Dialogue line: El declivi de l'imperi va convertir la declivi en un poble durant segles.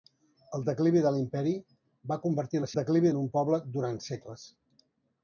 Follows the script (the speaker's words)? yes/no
yes